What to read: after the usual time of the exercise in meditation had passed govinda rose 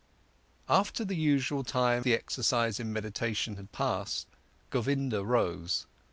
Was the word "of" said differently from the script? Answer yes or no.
yes